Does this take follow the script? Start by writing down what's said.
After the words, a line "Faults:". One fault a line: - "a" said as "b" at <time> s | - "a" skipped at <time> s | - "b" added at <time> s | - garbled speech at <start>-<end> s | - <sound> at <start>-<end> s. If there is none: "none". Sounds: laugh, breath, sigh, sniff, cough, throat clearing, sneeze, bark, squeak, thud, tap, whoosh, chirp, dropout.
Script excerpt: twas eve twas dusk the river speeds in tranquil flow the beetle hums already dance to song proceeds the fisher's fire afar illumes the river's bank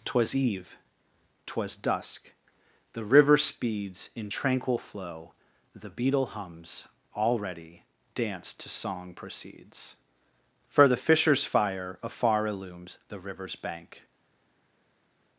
twas eve twas dusk the river speeds in tranquil flow the beetle hums already dance to song proceeds for the fisher's fire afar illumes the river's bank
Faults:
- "for" added at 10.7 s